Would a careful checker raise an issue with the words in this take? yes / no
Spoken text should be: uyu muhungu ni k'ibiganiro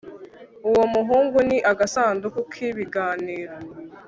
yes